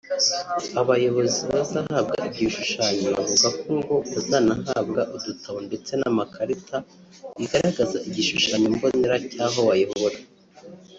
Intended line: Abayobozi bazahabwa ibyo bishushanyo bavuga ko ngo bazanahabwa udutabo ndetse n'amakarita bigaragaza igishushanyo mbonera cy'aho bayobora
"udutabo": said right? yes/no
yes